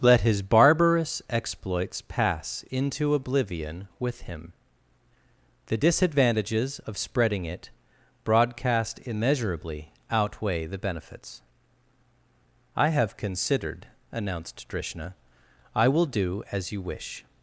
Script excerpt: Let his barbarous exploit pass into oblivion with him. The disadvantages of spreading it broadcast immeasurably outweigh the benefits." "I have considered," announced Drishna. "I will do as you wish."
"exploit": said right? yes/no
no